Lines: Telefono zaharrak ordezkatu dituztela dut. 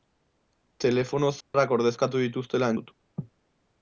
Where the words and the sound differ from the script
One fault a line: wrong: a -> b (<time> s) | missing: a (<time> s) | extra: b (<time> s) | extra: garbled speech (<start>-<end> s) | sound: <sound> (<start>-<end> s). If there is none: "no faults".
sound: dropout (1.4-1.5 s)